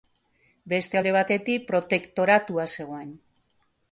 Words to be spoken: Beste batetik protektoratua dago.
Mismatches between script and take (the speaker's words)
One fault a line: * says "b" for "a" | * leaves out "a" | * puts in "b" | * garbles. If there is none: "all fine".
* puts in "alde"
* says "zegoen" for "dago"